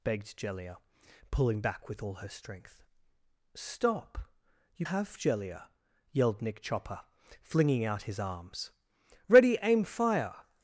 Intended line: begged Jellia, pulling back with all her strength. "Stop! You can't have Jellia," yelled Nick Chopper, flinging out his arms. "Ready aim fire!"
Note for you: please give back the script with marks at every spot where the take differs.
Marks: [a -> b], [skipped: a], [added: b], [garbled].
begged Jellia, pulling back with all her strength. "Stop! You [skipped: can't] have Jellia," yelled Nick Chopper, flinging out his arms. "Ready aim fire!"